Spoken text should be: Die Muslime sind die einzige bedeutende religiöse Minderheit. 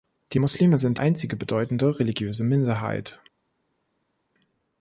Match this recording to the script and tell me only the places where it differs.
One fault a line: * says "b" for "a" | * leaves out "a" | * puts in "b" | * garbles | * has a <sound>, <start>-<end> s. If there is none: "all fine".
* leaves out "die"